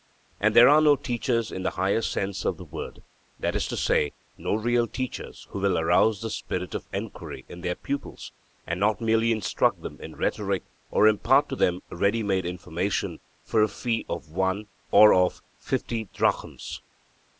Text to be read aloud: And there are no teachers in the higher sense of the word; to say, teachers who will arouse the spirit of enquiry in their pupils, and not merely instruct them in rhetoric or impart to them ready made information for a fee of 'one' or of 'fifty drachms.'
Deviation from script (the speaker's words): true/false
true